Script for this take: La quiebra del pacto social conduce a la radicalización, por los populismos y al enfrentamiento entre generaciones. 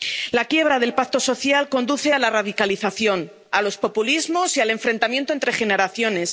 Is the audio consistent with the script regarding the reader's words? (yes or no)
no